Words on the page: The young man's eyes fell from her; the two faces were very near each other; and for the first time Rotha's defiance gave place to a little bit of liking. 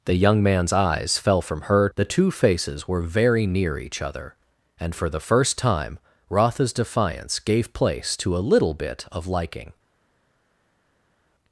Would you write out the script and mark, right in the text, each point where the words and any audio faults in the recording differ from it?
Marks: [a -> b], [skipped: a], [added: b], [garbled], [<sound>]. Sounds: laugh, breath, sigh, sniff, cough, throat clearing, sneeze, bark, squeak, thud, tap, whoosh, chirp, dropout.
The young man's eyes fell from her; the two faces were very near each other; and for the first time Rotha's defiance gave place to a little bit of liking.